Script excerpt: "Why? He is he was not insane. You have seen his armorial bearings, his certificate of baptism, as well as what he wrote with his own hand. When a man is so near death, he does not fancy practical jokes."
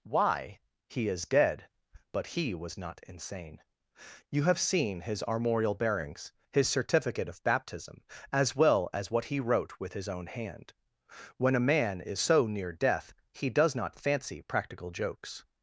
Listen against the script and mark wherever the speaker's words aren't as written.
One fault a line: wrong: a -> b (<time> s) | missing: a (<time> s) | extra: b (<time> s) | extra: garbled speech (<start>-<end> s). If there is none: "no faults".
extra: dead but (1.3 s)